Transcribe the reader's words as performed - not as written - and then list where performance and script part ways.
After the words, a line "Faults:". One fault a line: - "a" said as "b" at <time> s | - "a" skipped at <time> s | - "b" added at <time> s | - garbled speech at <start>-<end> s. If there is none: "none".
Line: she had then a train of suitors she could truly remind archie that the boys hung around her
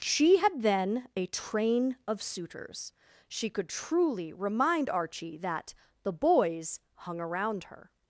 she had then a train of suitors she could truly remind archie that the boys hung around her
Faults:
none